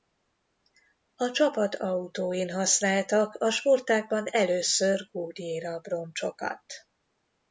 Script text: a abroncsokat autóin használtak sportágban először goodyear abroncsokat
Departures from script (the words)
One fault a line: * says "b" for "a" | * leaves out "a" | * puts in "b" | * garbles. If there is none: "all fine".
* says "csapat" for "abroncsokat"
* puts in "a"